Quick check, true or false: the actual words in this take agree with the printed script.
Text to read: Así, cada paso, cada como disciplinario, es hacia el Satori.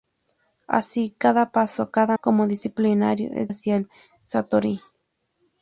true